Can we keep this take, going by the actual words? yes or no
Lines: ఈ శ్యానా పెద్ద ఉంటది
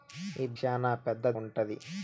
yes